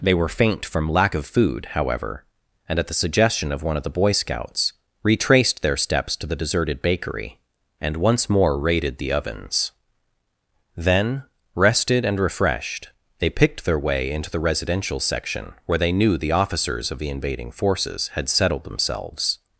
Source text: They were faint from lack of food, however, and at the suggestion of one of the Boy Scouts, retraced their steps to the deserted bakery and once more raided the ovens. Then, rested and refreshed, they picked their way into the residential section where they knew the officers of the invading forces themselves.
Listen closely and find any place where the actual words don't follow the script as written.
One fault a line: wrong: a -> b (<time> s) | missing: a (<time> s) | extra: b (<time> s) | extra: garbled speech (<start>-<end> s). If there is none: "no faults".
extra: had settled (18.1 s)